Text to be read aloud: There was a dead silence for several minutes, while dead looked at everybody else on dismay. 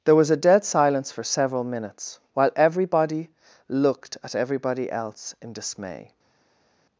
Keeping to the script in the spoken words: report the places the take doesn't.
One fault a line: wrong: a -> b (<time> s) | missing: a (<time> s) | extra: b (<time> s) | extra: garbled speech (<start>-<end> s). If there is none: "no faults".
wrong: dead -> everybody (2.5 s)
wrong: on -> in (5.4 s)